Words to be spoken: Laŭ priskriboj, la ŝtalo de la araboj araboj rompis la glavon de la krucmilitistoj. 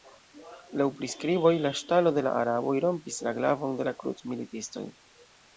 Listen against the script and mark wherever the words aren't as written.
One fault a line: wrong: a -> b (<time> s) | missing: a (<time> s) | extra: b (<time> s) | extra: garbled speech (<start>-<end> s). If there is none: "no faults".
missing: araboj (2.8 s)